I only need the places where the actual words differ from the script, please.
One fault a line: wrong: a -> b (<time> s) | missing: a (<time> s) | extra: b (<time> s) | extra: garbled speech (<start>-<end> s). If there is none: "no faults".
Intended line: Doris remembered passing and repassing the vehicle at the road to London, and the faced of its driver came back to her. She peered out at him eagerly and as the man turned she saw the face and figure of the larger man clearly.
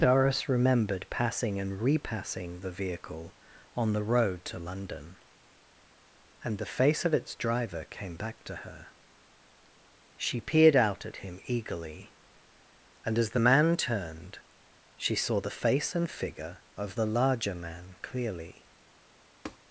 wrong: at -> on (3.8 s)
wrong: faced -> face (6.7 s)